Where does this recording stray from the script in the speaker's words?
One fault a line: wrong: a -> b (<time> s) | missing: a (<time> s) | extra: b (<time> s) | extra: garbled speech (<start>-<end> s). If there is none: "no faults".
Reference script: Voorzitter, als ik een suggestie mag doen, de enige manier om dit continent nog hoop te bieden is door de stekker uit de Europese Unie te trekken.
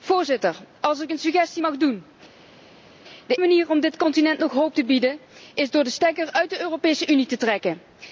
missing: enige (3.4 s)